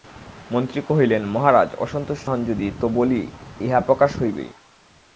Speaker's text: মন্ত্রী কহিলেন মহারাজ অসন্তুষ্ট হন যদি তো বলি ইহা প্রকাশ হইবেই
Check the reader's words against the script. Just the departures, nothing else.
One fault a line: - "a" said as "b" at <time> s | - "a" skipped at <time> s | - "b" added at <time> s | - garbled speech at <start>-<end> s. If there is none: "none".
none